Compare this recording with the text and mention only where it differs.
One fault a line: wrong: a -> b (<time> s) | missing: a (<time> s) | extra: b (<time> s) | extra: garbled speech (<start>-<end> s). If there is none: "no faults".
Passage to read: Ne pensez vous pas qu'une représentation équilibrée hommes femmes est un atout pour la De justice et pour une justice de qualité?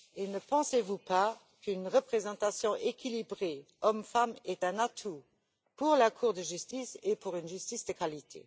extra: Cour (6.1 s)